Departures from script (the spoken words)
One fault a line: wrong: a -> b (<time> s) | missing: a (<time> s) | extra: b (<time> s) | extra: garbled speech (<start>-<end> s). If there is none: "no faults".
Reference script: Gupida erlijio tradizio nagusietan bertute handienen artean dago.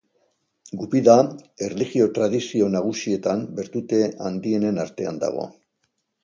no faults